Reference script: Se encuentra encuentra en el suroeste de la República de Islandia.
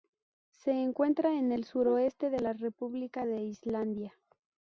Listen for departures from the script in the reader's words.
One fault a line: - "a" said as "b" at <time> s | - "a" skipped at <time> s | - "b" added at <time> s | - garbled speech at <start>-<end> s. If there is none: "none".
- "encuentra" skipped at 1.4 s